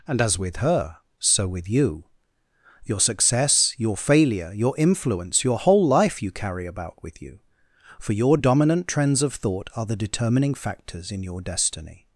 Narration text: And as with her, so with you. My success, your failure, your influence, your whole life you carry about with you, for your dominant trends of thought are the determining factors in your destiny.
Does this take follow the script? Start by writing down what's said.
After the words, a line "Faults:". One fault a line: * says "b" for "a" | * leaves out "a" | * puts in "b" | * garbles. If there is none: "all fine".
And as with her, so with you. Your success, your failure, your influence, your whole life you carry about with you, for your dominant trends of thought are the determining factors in your destiny.
Faults:
* says "Your" for "My"